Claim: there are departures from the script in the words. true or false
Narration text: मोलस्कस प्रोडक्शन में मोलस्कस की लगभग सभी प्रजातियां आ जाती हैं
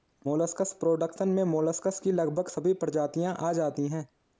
false